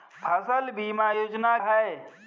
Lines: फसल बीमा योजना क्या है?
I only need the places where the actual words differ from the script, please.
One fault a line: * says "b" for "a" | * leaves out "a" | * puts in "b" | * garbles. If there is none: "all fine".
* leaves out "क्या"